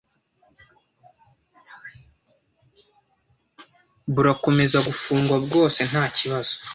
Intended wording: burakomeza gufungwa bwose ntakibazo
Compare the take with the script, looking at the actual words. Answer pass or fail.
pass